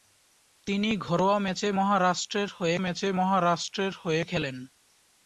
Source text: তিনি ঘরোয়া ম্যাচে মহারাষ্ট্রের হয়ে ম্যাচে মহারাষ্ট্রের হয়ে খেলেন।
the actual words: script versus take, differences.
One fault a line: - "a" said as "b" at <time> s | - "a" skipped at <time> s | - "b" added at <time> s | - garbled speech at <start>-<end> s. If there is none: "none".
none